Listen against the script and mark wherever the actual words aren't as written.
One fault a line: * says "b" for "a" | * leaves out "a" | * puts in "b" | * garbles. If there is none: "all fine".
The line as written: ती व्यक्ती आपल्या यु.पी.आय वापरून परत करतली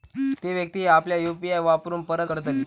all fine